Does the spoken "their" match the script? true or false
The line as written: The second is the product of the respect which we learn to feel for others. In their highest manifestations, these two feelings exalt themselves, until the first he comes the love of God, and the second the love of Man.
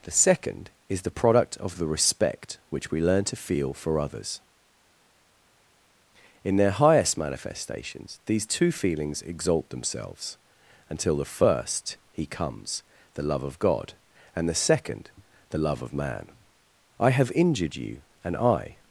true